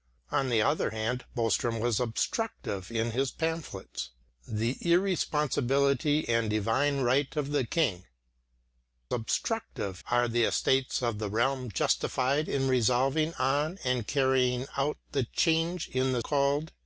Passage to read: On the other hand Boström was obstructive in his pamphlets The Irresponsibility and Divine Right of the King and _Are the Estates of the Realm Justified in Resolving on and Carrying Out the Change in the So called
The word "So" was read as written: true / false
false